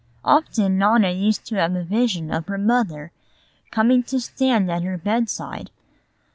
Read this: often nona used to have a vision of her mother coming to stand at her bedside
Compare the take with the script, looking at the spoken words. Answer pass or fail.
pass